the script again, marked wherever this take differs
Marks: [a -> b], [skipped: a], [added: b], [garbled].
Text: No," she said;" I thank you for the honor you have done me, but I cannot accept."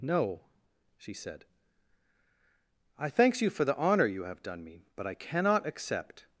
No," she said;" I [thank -> thanks] you for the honor you have done me, but I cannot accept."